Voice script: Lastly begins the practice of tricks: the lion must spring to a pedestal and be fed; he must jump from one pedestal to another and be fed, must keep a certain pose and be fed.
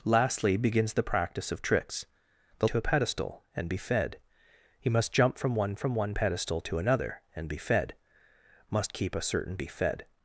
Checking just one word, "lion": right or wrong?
wrong